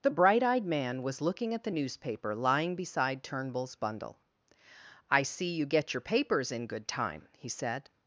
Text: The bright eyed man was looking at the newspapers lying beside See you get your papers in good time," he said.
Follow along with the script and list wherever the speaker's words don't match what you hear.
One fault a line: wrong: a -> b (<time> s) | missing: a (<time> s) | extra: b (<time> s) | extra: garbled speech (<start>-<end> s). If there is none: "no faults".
wrong: newspapers -> newspaper (1.7 s)
extra: Turnbull's bundle I (3.2 s)